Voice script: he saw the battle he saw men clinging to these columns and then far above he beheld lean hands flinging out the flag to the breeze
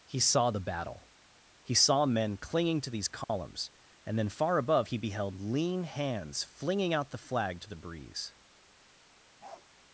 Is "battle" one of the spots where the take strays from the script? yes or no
no